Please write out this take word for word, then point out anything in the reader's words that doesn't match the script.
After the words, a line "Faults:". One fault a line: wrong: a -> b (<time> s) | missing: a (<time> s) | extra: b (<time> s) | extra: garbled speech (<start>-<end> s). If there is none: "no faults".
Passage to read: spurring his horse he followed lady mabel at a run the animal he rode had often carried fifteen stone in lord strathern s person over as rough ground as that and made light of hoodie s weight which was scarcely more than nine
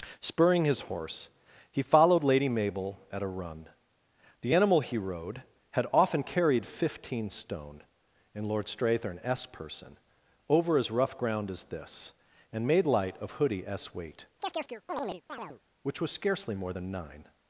spurring his horse he followed lady mabel at a run the animal he rode had often carried fifteen stone in lord strathern s person over as rough ground as this and made light of hoodie s weight which was scarcely more than nine
Faults:
wrong: that -> this (11.6 s)